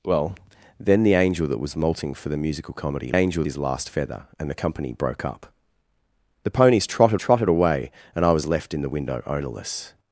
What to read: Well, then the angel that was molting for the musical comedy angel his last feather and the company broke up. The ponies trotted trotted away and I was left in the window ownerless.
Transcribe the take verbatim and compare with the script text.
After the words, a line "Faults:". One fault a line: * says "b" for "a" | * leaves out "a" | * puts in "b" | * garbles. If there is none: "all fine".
Well, then the angel that was molting for the musical comedy angel his last feather and the company broke up. The ponies trotted trotted away and I was left in the window ownerless.
Faults:
all fine